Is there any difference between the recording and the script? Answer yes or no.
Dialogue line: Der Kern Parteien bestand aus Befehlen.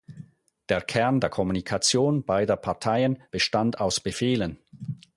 yes